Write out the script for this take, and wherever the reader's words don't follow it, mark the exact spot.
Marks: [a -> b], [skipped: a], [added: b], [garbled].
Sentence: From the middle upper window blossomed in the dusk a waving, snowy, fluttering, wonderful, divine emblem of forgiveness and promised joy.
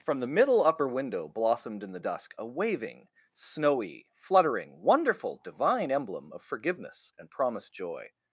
From the middle upper window blossomed in the dusk a waving, snowy, fluttering, wonderful, divine emblem of forgiveness and promised joy.